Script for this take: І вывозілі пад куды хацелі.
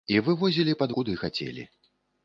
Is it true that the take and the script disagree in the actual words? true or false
false